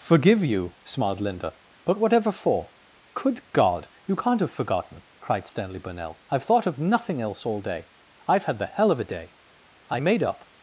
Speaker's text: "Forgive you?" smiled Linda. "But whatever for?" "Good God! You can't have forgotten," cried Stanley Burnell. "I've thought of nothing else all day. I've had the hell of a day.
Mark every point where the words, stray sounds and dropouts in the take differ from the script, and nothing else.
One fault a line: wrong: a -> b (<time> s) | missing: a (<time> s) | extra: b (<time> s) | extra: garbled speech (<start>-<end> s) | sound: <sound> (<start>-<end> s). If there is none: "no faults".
extra: I made up (9.9 s)